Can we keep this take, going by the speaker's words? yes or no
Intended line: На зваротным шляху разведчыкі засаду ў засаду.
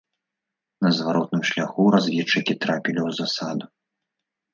no